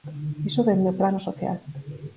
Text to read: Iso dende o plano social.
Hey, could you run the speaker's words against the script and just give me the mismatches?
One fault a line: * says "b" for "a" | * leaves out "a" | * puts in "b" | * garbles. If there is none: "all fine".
all fine